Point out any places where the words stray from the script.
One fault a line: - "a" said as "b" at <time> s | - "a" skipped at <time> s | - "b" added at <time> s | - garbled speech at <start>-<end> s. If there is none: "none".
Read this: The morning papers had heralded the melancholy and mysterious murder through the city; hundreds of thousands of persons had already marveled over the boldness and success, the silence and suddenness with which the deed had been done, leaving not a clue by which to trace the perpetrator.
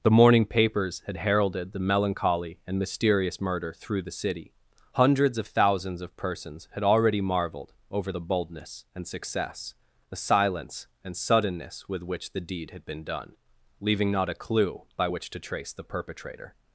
none